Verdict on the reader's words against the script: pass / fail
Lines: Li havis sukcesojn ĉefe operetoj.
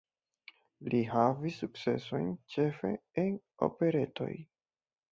fail